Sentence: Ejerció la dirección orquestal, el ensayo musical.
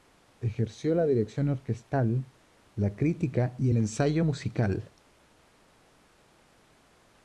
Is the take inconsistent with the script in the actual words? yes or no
yes